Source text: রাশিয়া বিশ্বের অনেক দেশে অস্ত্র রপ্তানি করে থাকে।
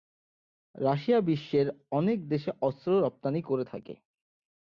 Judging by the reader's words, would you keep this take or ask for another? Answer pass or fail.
pass